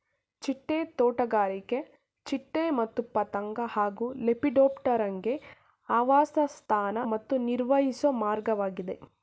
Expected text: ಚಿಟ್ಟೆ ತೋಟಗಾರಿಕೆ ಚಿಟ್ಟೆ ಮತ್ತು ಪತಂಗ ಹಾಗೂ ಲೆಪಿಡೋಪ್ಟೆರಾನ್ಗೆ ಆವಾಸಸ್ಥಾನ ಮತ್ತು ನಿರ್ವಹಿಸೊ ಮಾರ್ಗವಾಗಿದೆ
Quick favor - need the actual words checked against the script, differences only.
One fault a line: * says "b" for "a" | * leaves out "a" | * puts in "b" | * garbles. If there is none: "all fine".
all fine